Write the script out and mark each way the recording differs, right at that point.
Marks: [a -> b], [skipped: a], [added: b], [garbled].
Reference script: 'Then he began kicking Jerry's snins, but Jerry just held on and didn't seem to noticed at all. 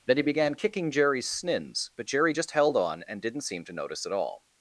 'Then he began kicking Jerry's snins, but Jerry just held on and didn't seem to [noticed -> notice] at all.